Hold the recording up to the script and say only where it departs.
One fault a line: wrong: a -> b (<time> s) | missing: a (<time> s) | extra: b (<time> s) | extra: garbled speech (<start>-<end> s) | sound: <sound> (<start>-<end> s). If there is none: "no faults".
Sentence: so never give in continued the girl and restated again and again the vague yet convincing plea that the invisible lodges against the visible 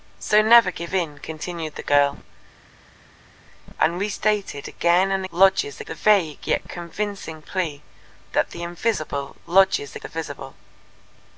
wrong: again -> lodges (5.3 s)
missing: against (10.0 s)